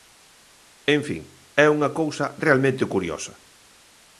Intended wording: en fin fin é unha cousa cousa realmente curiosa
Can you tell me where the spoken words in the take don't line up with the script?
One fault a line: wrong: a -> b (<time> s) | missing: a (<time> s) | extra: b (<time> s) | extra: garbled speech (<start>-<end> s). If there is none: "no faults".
missing: fin (1.2 s)
missing: cousa (2.3 s)